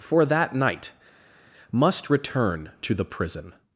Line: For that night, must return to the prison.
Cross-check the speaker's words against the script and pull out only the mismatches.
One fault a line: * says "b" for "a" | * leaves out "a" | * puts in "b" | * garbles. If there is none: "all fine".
all fine